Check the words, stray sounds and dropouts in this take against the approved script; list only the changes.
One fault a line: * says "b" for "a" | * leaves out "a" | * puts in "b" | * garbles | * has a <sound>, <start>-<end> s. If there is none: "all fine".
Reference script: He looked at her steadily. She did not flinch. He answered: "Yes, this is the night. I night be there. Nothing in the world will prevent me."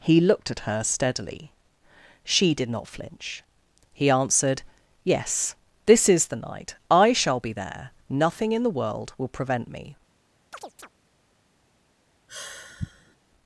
* says "shall" for "night"
* has a chirp, 10.5-10.9 s
* has a sigh, 12.3-13.2 s